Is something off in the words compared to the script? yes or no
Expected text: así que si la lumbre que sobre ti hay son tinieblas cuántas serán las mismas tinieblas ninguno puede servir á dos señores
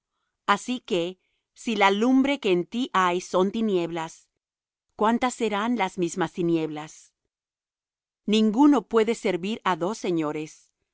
yes